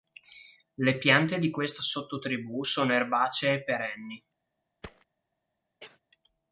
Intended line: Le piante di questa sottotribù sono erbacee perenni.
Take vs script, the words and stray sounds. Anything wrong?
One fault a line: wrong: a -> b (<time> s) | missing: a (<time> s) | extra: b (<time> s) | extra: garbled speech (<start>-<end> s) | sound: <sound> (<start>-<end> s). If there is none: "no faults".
sound: thud (4.8-5.1 s)
sound: cough (5.8-6.0 s)